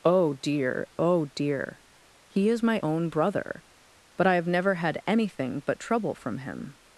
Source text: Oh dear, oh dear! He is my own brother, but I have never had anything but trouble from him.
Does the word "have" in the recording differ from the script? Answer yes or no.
no